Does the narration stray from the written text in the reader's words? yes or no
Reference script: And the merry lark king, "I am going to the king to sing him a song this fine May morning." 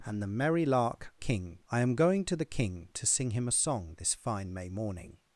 no